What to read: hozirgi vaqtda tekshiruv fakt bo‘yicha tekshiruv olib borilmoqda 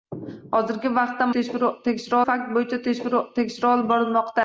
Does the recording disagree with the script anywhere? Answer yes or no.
no